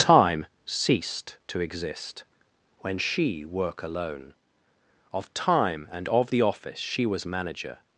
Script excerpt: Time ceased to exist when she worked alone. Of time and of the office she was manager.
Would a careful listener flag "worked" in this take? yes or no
yes